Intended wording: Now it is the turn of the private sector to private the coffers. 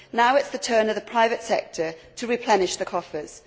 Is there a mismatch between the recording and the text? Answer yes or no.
yes